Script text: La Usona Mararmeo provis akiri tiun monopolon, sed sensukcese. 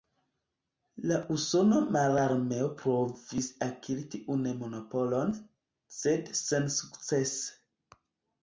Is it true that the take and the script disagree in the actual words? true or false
false